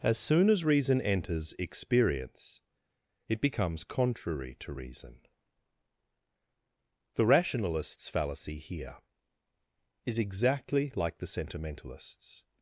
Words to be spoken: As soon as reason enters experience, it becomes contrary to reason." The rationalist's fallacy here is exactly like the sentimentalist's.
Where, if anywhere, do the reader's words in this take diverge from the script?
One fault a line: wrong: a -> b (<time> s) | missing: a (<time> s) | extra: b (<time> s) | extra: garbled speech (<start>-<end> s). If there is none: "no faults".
no faults